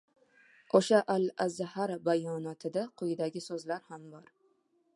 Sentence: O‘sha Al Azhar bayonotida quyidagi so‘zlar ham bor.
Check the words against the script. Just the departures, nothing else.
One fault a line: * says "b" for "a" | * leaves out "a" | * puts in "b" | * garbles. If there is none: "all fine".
all fine